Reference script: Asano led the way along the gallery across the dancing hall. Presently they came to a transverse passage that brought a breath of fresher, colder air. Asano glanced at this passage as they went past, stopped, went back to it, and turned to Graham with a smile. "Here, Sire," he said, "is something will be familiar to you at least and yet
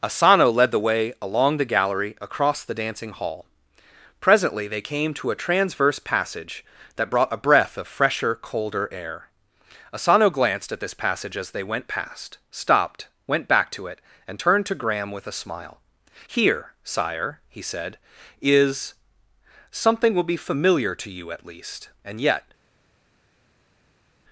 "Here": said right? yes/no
yes